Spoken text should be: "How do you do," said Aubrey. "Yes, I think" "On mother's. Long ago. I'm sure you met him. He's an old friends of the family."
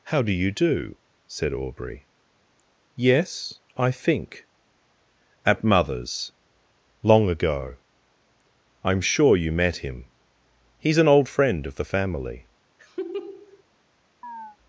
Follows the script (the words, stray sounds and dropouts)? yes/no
no